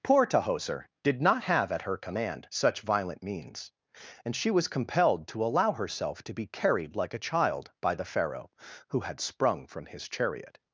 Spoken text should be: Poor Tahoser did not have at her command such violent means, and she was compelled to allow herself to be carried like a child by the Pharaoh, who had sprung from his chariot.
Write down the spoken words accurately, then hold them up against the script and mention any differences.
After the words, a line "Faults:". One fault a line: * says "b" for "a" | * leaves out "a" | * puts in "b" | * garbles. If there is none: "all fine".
Poor Tahoser did not have at her command such violent means, and she was compelled to allow herself to be carried like a child by the Pharaoh, who had sprung from his chariot.
Faults:
all fine